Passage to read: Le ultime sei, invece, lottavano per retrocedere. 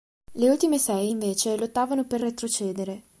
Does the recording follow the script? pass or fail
pass